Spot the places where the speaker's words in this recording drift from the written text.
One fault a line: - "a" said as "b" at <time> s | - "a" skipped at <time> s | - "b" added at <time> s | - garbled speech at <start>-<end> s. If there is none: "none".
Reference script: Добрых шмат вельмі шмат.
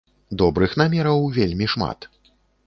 - "шмат" said as "намераў" at 0.8 s